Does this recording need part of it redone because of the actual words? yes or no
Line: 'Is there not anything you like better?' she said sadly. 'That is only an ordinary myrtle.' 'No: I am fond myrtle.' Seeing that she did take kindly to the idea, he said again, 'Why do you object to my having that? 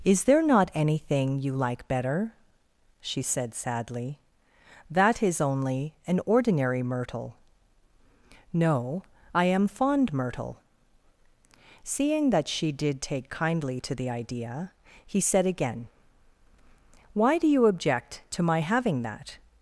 no